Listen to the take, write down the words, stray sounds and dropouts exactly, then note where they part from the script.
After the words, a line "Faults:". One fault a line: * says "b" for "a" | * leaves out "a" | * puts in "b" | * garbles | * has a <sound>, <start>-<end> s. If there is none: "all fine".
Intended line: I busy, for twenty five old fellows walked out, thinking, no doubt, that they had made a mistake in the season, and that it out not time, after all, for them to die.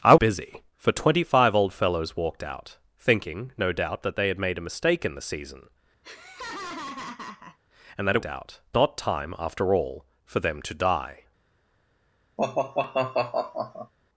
I busy, for twenty five old fellows walked out, thinking, no doubt, that they had made a mistake in the season, and that it out not time, after all, for them to die.
Faults:
* has a laugh, 6.0-7.6 s
* has a sigh, 12.4-13.9 s